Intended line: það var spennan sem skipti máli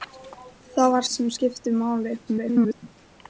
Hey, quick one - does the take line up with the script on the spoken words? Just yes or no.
no